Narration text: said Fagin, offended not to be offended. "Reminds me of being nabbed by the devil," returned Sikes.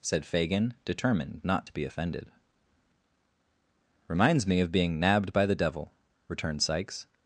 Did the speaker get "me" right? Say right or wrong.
right